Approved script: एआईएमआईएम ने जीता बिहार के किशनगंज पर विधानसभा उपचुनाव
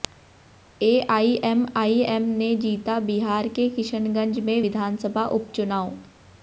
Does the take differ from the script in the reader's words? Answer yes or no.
yes